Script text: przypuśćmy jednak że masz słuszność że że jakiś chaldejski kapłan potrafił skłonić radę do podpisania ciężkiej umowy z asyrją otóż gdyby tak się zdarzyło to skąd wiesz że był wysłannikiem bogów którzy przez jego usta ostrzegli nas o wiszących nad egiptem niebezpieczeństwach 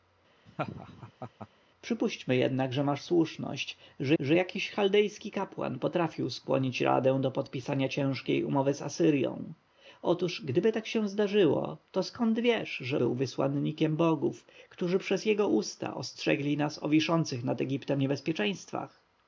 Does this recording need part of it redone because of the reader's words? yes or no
no